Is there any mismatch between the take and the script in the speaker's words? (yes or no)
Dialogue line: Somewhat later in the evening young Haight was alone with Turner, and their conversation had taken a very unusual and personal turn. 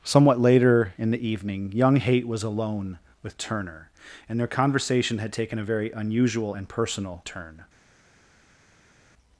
no